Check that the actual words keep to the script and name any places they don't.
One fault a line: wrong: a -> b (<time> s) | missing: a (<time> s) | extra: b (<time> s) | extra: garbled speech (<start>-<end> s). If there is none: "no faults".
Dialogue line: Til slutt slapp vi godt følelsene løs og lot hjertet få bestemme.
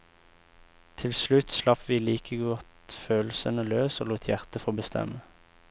extra: like (2.0 s)